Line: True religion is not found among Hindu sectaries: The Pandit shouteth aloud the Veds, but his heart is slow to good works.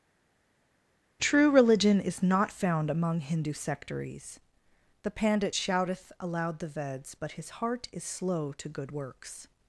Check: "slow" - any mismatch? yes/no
no